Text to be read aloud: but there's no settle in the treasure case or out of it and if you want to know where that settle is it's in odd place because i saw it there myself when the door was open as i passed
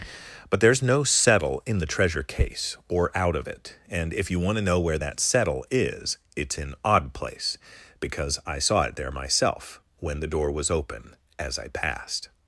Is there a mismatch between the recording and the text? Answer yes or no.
no